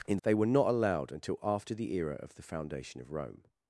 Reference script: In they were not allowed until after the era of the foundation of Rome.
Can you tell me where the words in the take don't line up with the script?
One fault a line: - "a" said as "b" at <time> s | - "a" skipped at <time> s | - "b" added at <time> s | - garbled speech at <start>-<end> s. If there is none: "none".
none